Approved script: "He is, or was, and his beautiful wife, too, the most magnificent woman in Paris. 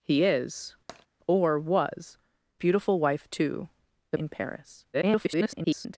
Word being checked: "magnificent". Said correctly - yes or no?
no